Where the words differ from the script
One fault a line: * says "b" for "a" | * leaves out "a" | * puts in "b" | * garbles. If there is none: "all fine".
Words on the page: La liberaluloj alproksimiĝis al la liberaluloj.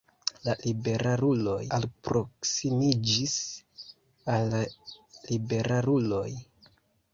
all fine